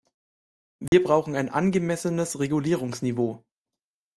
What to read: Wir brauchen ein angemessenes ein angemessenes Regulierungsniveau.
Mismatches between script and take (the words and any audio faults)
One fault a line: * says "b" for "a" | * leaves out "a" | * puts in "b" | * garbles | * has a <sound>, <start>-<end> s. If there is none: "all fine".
* has a dropout, 0.9-0.9 s
* leaves out "ein angemessenes"